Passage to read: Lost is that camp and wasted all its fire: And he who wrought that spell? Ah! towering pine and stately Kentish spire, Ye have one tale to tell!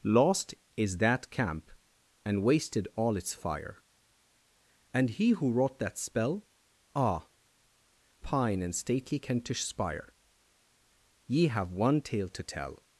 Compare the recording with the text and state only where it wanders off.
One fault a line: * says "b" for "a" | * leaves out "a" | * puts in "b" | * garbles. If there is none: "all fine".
* leaves out "towering"